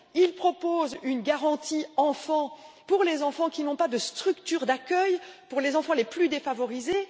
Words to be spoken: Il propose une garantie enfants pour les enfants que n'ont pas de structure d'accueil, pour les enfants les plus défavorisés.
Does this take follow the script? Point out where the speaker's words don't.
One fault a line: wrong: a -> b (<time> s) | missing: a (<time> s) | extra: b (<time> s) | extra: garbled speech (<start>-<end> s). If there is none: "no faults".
wrong: que -> qui (3.5 s)